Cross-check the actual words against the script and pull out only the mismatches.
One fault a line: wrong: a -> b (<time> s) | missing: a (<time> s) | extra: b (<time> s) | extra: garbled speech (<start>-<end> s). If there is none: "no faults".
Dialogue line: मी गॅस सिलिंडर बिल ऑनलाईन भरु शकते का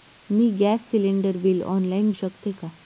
missing: भरु (2.1 s)